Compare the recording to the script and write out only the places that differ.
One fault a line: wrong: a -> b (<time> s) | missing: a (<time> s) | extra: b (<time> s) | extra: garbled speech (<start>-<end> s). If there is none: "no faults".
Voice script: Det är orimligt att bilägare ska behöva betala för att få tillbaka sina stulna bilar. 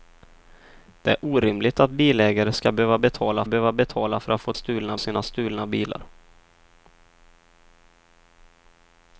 extra: behöva betala (3.5 s)
wrong: tillbaka -> stulna (4.5 s)